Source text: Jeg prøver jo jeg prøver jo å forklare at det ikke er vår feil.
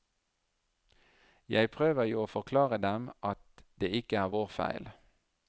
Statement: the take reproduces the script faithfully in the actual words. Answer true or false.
false